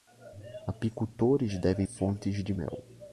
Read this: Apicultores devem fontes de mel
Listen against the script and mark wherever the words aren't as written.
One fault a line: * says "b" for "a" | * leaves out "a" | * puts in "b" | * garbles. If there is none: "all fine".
all fine